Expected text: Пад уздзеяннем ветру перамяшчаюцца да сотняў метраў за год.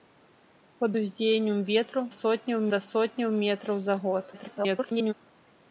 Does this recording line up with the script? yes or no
no